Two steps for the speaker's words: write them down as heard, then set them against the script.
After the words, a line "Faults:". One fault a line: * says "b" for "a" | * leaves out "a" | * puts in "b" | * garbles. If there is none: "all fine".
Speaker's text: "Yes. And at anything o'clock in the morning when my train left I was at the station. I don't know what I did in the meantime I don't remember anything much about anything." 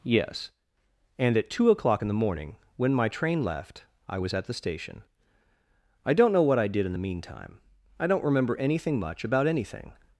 "Yes. And at two o'clock in the morning when my train left I was at the station. I don't know what I did in the meantime I don't remember anything much about anything."
Faults:
* says "two" for "anything"